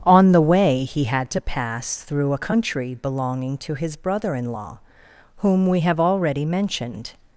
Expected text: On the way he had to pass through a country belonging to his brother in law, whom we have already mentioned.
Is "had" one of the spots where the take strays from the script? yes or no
no